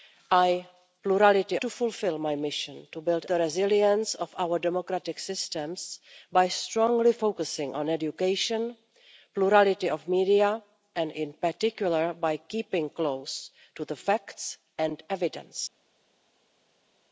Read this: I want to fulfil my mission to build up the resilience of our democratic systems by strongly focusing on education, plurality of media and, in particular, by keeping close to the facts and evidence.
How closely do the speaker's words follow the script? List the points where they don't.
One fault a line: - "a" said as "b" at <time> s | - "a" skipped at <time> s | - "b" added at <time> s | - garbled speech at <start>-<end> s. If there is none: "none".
- "want" said as "plurality" at 1.0 s
- "up" skipped at 3.2 s